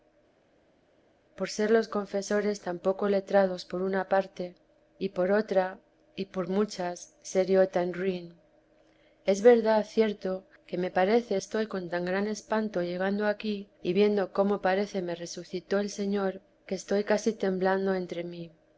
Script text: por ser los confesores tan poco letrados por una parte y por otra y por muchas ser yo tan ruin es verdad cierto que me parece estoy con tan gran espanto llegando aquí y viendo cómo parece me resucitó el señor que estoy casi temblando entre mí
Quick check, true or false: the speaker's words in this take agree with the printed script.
true